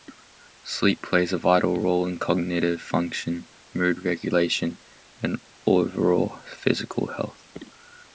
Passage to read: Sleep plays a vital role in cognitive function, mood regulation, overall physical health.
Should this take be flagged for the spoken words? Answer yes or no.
yes